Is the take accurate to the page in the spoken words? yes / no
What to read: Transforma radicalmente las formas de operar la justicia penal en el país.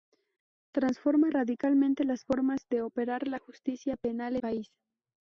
no